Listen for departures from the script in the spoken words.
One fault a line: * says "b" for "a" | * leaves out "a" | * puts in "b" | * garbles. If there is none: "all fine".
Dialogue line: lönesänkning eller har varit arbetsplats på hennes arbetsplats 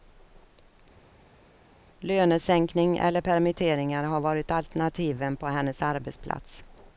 * puts in "permitteringar"
* says "alternativen" for "arbetsplats"